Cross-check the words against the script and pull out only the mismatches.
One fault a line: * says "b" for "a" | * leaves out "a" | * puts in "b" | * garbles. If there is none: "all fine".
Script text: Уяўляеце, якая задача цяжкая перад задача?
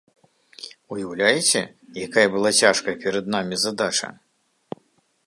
* says "была" for "задача"
* puts in "намі"